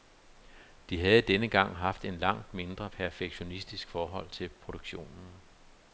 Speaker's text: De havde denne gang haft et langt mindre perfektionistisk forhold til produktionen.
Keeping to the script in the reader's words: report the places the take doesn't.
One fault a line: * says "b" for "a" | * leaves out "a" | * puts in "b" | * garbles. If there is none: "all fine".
all fine